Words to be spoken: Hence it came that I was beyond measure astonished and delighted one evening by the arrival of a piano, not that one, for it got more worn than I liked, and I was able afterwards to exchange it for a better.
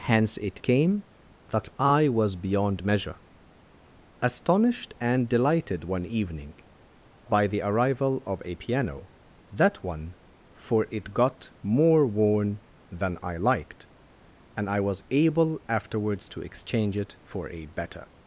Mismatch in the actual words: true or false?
true